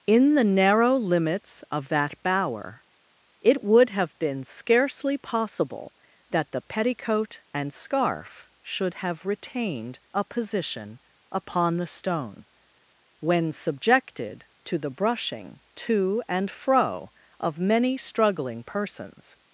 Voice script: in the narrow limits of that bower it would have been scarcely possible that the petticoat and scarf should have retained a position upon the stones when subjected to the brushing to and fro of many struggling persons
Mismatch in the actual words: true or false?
true